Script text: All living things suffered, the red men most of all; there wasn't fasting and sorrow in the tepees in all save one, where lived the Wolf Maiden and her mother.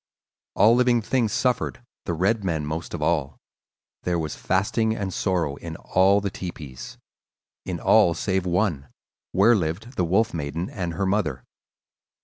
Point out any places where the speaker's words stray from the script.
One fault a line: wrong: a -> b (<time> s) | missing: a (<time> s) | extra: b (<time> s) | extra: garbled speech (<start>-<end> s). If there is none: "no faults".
wrong: wasn't -> was (4.2 s)
extra: all (5.7 s)